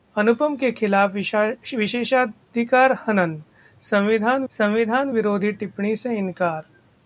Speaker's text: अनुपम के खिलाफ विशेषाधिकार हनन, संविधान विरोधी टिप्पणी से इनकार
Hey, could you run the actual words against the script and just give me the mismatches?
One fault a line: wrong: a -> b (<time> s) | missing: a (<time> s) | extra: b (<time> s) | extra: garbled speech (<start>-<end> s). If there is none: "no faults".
extra: संविधान (4.5 s)